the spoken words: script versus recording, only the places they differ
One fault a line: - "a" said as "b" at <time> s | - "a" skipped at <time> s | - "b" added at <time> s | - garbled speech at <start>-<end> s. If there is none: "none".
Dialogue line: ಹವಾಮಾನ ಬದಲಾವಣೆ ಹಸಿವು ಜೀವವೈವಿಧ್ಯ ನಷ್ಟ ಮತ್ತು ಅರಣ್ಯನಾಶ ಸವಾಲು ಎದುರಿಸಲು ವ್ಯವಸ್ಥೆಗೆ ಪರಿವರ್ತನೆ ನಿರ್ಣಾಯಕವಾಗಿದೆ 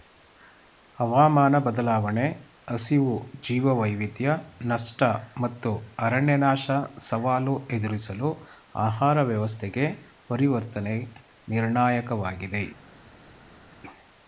- "ಆಹಾರ" added at 8.8 s